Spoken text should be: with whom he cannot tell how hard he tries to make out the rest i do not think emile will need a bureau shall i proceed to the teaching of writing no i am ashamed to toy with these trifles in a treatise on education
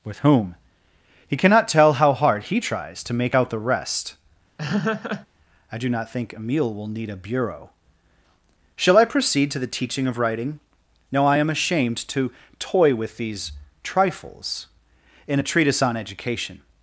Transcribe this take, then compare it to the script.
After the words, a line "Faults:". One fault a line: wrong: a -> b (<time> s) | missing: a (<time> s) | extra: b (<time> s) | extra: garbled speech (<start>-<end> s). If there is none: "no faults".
with whom he cannot tell how hard he tries to make out the rest i do not think emile will need a bureau shall i proceed to the teaching of writing no i am ashamed to toy with these trifles in a treatise on education
Faults:
no faults